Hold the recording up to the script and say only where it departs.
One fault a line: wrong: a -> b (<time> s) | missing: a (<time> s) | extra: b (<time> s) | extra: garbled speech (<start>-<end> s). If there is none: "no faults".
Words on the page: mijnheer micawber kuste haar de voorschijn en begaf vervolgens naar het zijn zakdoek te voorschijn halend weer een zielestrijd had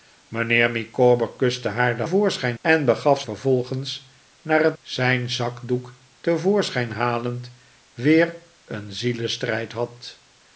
no faults